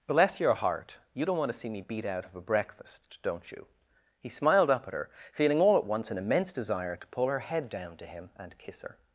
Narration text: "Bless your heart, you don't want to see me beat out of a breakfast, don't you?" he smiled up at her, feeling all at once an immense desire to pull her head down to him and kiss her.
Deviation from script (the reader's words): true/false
false